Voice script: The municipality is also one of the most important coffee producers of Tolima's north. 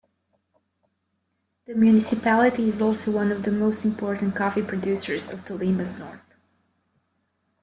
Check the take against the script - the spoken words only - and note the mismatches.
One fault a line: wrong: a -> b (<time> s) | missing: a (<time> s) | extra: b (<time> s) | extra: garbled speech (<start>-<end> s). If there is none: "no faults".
no faults